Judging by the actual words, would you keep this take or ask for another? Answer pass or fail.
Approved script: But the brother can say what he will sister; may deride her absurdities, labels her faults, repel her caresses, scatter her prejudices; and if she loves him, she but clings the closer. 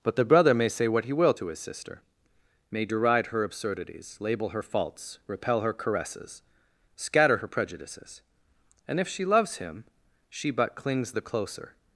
fail